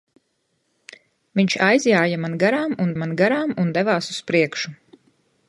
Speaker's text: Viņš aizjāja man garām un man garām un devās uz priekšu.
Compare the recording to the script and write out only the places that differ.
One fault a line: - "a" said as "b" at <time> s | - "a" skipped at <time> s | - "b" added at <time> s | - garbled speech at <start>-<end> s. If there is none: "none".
none